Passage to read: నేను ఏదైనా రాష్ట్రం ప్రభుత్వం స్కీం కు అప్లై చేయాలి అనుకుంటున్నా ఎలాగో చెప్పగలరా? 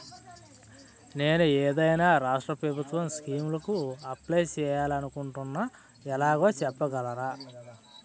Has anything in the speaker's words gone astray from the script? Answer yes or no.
no